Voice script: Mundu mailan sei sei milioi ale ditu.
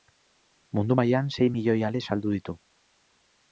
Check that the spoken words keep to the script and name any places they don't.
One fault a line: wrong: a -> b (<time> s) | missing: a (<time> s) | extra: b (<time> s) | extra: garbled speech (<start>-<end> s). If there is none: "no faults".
missing: sei (1.5 s)
extra: saldu (2.1 s)